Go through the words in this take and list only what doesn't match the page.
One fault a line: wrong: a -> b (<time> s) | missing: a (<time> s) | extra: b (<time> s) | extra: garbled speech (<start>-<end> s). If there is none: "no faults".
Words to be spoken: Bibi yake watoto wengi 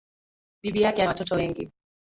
no faults